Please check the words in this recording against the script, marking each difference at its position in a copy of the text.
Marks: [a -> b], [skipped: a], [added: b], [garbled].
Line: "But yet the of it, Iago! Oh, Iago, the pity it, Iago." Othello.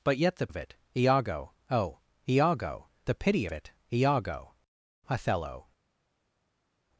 "But yet the of it, Iago! Oh, Iago, the pity it, Iago." Othello.